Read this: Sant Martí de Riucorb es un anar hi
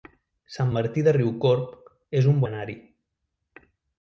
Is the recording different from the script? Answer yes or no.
no